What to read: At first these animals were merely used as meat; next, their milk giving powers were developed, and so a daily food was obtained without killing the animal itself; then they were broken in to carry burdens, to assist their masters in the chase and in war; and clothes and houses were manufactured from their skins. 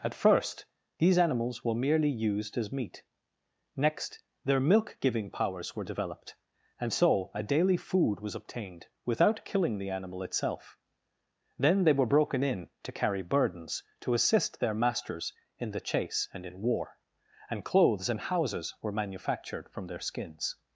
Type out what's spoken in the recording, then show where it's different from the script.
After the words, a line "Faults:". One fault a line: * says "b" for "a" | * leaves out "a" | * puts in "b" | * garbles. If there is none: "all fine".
At first these animals were merely used as meat; next, their milk giving powers were developed, and so a daily food was obtained without killing the animal itself; then they were broken in to carry burdens, to assist their masters in the chase and in war; and clothes and houses were manufactured from their skins.
Faults:
all fine